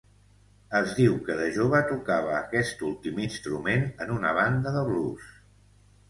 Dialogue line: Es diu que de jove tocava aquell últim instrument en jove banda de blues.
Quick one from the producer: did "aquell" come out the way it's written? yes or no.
no